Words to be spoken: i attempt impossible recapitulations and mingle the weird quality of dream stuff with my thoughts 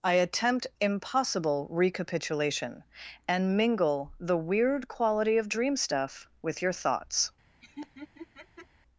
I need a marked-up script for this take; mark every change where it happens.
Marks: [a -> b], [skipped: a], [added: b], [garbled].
i attempt impossible [recapitulations -> recapitulation] and mingle the weird quality of dream stuff with [my -> your] thoughts